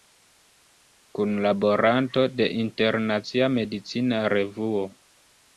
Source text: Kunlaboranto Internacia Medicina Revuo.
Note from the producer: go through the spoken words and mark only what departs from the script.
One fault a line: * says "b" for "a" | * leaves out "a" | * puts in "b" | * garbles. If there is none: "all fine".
* puts in "de"